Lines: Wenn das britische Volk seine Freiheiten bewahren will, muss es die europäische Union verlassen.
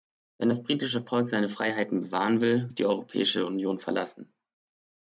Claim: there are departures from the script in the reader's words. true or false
true